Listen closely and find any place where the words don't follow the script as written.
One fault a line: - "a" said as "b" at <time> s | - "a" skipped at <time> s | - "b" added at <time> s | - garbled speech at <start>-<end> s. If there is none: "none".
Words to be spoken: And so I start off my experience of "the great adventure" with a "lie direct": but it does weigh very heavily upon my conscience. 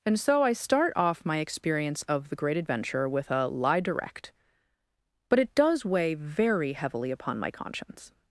none